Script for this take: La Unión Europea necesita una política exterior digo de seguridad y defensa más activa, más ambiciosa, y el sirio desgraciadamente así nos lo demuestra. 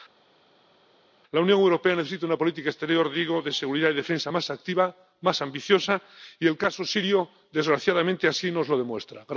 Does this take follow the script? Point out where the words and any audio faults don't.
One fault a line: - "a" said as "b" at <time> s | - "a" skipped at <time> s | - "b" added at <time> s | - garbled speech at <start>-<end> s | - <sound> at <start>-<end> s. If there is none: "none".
- "caso" added at 6.6 s